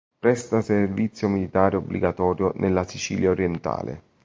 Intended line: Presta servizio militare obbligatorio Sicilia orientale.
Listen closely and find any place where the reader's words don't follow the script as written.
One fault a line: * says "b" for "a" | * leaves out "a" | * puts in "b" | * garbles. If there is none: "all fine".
* puts in "nella"